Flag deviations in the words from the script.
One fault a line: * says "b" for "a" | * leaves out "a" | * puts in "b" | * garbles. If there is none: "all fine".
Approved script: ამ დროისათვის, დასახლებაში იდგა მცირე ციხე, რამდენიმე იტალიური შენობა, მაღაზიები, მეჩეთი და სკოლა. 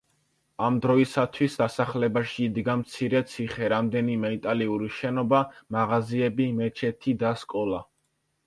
all fine